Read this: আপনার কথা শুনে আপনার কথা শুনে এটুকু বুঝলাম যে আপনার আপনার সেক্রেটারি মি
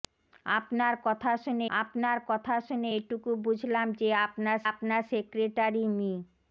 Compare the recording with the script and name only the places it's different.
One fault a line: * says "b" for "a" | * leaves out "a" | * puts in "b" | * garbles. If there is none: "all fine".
all fine